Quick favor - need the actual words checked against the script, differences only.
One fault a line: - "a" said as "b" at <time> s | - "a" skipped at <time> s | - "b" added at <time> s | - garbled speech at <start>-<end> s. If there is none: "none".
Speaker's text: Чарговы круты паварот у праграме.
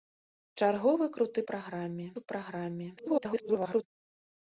- "паварот" said as "праграме" at 1.5 s
- garbled speech at 3.0-3.8 s